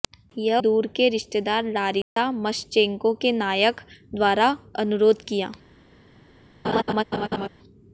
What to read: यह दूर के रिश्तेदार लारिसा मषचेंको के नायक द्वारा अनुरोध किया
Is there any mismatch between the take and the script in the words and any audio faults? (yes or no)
yes